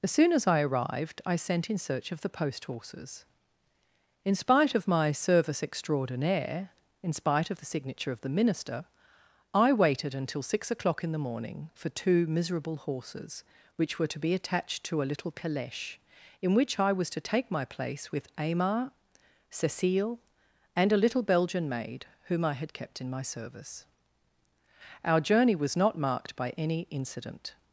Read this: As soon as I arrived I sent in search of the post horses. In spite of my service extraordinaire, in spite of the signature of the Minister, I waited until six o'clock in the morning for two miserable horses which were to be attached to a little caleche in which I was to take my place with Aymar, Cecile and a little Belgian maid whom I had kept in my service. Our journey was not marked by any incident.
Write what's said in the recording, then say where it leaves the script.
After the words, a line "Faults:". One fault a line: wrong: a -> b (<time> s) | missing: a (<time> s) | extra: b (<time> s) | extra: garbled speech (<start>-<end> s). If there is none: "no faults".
As soon as I arrived I sent in search of the post horses. In spite of my service extraordinaire, in spite of the signature of the Minister, I waited until six o'clock in the morning for two miserable horses which were to be attached to a little caleche in which I was to take my place with Aymar, Cecile and a little Belgian maid whom I had kept in my service. Our journey was not marked by any incident.
Faults:
no faults